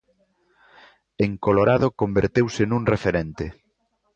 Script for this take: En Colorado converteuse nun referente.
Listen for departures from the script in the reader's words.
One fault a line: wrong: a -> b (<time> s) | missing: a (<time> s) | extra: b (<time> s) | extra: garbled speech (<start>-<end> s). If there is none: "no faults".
no faults